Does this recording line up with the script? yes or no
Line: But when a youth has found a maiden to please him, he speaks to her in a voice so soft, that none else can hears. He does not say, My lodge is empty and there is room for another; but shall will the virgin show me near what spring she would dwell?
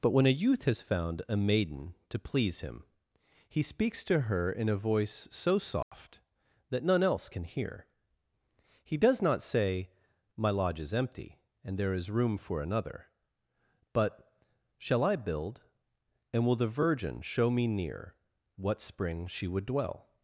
no